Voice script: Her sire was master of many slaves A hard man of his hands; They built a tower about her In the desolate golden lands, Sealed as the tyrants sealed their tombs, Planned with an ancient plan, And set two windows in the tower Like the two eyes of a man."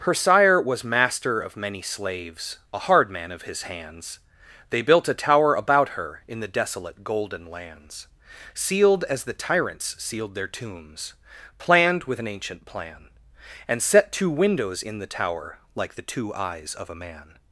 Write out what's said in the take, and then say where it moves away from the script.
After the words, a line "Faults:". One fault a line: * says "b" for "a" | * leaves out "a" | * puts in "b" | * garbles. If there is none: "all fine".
Her sire was master of many slaves A hard man of his hands; They built a tower about her In the desolate golden lands, Sealed as the tyrants sealed their tombs, Planned with an ancient plan, And set two windows in the tower Like the two eyes of a man."
Faults:
all fine